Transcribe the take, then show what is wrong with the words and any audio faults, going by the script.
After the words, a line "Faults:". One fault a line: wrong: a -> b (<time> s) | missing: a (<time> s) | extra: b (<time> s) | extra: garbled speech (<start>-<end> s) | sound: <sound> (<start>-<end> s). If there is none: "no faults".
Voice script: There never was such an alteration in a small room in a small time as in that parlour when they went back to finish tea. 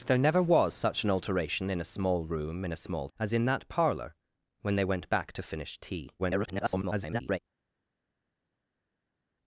There never was such an alteration in a small room in a small as in that parlour when they went back to finish tea. [garbled]
Faults:
missing: time (3.1 s)
extra: garbled speech (6.2-7.4 s)